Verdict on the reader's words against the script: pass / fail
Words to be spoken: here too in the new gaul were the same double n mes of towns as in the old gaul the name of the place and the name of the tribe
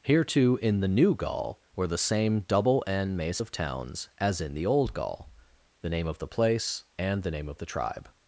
fail